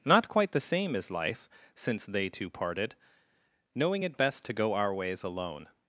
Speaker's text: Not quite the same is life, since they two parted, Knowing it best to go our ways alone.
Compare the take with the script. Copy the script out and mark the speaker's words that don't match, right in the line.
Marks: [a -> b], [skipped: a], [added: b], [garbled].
Not quite the same is life, since they two parted, Knowing it best to go our ways alone.